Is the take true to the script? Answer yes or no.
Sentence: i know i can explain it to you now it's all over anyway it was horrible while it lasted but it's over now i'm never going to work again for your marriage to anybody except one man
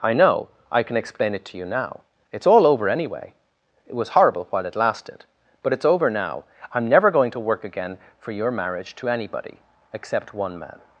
yes